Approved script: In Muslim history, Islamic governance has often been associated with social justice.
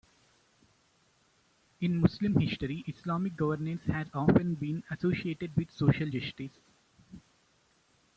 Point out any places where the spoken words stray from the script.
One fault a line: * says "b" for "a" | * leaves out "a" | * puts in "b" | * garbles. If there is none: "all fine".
all fine